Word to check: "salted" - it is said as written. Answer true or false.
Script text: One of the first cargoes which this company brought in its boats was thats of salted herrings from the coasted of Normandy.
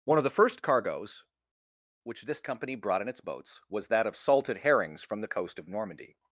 true